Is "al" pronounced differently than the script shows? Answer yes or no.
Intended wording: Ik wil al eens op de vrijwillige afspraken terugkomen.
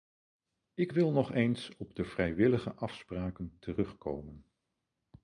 yes